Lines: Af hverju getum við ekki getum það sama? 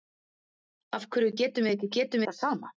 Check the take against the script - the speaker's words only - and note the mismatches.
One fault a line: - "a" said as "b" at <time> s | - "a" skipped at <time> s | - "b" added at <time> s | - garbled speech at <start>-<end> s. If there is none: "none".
none